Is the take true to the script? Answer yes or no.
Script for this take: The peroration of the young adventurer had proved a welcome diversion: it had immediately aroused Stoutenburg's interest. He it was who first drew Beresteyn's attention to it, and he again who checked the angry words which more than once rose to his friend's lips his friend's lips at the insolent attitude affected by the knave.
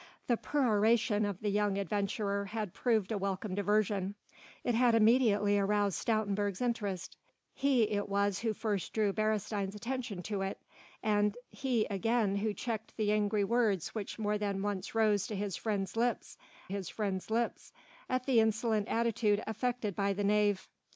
yes